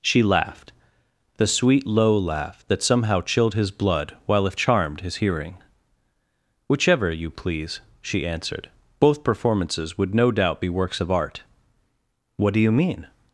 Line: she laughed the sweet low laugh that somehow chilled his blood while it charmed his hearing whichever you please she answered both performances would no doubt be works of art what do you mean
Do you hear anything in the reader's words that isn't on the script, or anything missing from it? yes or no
yes